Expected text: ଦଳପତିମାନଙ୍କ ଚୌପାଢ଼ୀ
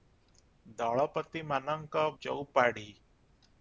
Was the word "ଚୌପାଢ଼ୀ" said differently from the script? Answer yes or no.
no